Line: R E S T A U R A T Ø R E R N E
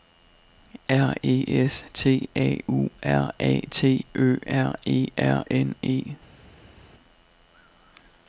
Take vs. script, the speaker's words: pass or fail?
pass